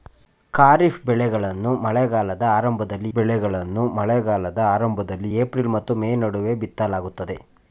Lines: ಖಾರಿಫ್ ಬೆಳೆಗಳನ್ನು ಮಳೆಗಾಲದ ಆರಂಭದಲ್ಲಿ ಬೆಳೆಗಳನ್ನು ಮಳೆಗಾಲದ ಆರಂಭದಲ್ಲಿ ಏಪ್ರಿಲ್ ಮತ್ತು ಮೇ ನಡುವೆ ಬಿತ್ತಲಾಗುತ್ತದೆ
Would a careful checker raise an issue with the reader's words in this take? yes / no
no